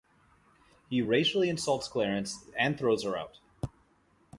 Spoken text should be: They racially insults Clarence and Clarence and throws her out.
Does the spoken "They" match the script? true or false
false